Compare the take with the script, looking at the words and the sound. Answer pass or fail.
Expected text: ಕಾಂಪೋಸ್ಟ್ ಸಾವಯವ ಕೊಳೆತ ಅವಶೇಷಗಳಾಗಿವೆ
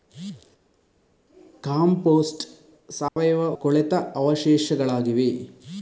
fail